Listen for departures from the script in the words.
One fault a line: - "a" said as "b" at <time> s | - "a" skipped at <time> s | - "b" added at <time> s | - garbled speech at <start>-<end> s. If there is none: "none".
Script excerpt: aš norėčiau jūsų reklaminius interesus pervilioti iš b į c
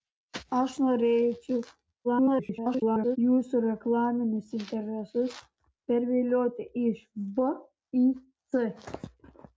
- garbled speech at 2.0-3.2 s